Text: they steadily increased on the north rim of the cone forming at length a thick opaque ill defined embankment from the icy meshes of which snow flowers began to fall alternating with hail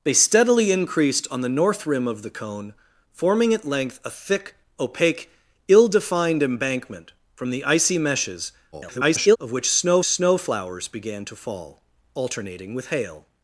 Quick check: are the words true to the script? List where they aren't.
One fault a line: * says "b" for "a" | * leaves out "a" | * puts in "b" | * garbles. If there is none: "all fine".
* garbles
* puts in "snow"